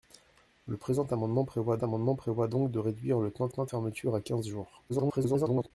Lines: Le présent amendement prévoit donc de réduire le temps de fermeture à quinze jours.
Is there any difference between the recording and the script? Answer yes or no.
yes